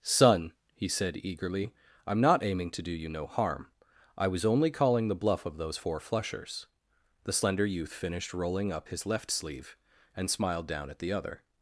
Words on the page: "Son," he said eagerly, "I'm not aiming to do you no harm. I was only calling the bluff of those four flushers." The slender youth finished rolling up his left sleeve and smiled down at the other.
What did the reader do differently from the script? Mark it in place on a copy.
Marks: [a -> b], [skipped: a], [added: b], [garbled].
"Son," he said eagerly, "I'm not aiming to do you no harm. I was only calling the bluff of those four flushers." The slender youth finished rolling up his left sleeve and smiled down at the other.